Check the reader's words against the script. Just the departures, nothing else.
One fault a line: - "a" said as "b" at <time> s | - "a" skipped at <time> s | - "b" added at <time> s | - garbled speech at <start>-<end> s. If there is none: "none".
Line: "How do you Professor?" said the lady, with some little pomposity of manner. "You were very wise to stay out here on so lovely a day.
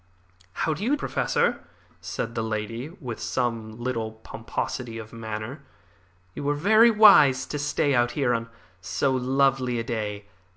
none